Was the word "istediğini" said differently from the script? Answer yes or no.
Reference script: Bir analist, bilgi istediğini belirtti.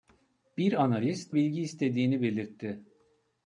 no